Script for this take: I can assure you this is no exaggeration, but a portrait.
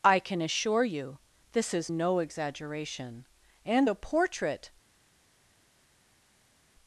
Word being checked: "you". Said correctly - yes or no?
yes